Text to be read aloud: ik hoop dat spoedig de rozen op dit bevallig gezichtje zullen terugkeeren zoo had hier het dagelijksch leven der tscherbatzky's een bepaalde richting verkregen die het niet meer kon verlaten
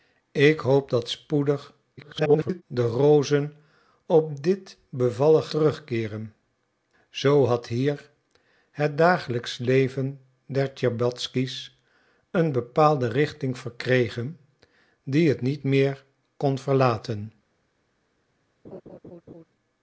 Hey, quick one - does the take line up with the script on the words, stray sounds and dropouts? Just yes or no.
no